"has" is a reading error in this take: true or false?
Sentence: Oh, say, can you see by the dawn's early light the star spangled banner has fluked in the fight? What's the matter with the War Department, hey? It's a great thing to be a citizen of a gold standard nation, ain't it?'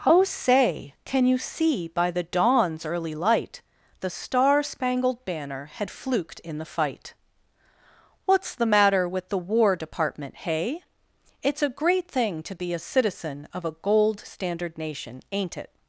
true